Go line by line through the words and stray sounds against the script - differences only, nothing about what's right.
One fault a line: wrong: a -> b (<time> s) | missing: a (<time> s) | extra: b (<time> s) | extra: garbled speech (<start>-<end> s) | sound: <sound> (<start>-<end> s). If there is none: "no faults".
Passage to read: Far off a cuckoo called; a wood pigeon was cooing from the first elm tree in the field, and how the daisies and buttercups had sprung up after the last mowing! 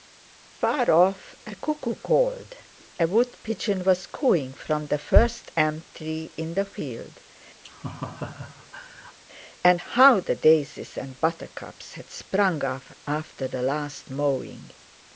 sound: laugh (7.6-9.2 s)